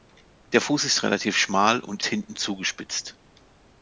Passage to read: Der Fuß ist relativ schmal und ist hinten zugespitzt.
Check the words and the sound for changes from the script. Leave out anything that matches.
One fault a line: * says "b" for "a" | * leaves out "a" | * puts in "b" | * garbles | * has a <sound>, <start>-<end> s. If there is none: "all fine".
* leaves out "ist"